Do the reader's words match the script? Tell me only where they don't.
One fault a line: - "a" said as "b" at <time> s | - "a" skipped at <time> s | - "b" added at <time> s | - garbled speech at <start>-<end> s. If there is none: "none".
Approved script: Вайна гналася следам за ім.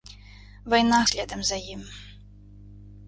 - "гналася" skipped at 1.0 s